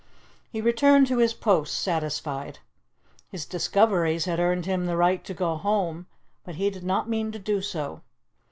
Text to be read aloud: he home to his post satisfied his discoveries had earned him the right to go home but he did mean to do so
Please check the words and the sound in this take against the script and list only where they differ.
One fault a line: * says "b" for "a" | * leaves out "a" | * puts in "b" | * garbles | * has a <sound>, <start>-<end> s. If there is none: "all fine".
* says "returned" for "home"
* puts in "not"